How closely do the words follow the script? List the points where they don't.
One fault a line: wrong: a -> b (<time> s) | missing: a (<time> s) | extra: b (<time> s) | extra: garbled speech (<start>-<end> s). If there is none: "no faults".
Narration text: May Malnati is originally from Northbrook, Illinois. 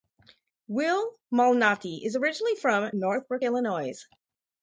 wrong: May -> Will (0.7 s)